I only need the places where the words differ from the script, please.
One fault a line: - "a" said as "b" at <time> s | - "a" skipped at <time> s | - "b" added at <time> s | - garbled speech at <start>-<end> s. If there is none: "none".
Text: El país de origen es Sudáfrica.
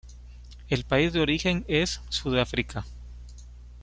none